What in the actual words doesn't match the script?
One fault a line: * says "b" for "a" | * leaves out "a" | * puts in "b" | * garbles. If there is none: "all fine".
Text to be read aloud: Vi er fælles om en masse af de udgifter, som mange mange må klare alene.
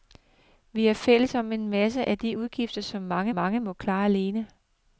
all fine